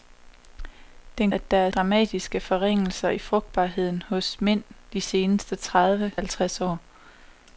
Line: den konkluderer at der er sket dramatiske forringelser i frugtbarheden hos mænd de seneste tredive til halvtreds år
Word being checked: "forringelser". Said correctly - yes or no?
yes